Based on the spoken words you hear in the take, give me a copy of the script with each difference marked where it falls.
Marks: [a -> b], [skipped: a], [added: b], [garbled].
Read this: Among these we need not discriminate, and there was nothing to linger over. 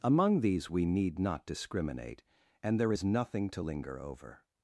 Among these we need not discriminate, and there [was -> is] nothing to linger over.